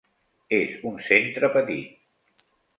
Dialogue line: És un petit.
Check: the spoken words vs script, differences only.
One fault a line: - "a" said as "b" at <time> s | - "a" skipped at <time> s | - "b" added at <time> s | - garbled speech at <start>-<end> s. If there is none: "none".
- "centre" added at 1.1 s